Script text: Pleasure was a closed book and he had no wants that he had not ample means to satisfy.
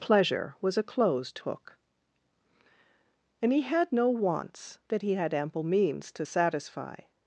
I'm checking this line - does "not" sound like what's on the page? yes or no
no